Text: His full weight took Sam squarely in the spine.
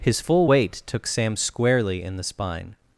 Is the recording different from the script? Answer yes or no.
no